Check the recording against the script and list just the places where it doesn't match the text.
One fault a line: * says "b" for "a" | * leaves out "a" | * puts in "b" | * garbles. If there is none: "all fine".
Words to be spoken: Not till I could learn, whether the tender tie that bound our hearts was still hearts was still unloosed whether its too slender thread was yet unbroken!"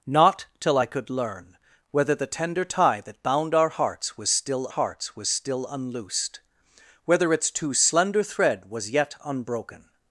all fine